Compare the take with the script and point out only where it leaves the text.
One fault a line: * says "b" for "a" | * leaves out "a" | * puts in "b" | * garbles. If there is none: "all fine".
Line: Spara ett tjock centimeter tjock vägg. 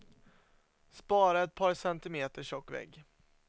* says "par" for "tjock"